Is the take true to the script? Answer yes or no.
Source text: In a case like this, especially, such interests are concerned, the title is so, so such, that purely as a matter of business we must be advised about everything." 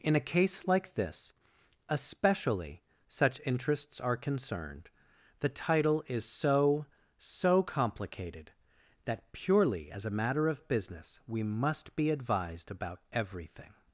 no